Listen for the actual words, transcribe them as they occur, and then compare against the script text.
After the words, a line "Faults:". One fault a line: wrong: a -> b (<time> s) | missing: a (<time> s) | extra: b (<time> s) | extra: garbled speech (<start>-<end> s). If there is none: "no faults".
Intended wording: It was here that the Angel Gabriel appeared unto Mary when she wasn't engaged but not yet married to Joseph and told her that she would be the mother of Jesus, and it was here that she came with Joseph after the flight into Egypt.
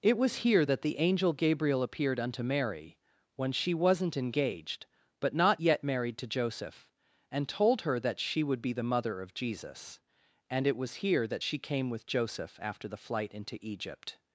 It was here that the Angel Gabriel appeared unto Mary when she wasn't engaged but not yet married to Joseph and told her that she would be the mother of Jesus, and it was here that she came with Joseph after the flight into Egypt.
Faults:
no faults